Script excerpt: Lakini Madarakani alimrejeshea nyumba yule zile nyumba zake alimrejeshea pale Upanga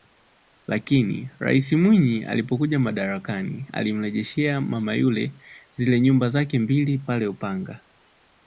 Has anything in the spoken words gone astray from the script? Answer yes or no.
yes